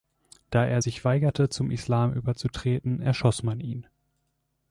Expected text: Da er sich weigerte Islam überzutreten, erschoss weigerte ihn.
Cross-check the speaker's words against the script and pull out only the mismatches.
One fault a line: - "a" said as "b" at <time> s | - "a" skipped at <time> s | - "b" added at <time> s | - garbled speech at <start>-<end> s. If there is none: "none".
- "zum" added at 1.5 s
- "weigerte" said as "man" at 3.4 s